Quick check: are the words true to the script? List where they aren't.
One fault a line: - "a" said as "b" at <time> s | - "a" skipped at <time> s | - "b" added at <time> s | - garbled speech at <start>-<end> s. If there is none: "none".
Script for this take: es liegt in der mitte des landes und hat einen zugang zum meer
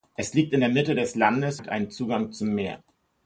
- "und" skipped at 1.6 s